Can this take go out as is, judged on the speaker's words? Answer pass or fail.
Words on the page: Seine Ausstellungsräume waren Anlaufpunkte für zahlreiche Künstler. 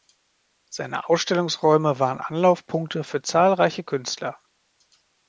pass